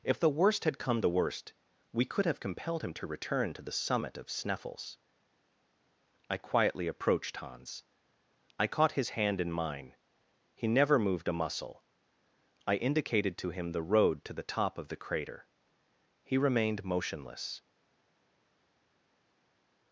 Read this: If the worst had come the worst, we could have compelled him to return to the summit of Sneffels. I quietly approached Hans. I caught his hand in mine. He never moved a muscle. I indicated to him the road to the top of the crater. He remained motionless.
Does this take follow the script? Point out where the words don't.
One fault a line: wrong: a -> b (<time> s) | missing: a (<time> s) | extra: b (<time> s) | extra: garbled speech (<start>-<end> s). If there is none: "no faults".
no faults